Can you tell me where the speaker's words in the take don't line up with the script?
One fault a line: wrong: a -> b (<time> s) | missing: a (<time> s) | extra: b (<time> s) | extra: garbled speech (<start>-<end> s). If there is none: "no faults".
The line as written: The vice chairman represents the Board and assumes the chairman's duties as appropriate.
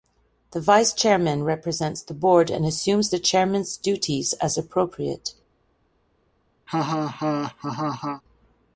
no faults